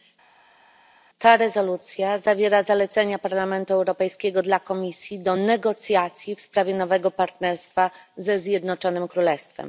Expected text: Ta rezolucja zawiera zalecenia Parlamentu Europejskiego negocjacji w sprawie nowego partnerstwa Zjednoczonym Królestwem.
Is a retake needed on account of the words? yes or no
yes